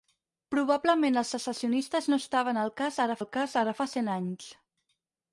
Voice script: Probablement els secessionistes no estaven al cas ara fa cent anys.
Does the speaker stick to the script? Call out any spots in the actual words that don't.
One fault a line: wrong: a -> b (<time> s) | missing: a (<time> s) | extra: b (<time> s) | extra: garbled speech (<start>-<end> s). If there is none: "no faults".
extra: al cas ara (3.2 s)